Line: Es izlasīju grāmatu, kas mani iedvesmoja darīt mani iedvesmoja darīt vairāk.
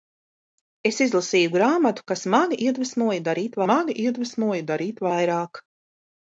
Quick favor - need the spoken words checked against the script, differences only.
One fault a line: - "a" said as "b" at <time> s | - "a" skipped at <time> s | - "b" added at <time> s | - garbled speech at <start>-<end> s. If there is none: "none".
none